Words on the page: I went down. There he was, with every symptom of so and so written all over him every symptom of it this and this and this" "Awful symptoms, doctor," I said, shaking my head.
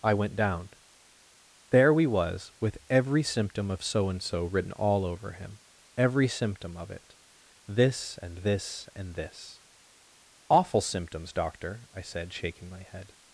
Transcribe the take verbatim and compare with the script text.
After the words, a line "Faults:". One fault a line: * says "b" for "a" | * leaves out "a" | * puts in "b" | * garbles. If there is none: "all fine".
I went down. There we was, with every symptom of so and so written all over him every symptom of it this and this and this" "Awful symptoms, doctor," I said, shaking my head.
Faults:
* says "we" for "he"